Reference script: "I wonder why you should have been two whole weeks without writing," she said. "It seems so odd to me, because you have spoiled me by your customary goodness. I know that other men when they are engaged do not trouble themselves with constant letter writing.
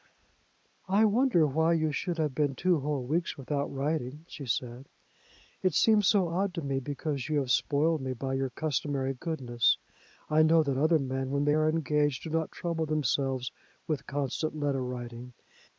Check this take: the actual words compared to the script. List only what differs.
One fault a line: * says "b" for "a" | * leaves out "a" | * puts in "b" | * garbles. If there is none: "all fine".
all fine